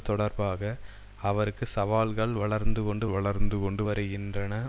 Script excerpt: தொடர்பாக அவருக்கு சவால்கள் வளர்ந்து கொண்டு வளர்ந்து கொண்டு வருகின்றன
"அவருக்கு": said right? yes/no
yes